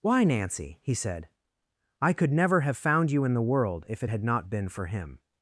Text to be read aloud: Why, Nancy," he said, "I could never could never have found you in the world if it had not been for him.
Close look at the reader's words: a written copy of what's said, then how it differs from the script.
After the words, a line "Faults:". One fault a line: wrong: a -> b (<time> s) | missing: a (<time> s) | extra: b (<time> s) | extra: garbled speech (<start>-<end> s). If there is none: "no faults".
Why, Nancy," he said, "I could never have found you in the world if it had not been for him.
Faults:
missing: could never (2.6 s)